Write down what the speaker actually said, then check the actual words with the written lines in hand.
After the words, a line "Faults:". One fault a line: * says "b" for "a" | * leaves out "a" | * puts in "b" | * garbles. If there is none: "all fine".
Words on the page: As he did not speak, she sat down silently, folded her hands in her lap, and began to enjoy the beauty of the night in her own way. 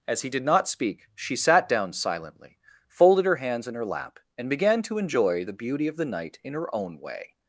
As he did not speak, she sat down silently, folded her hands in her lap, and began to enjoy the beauty of the night in her own way.
Faults:
all fine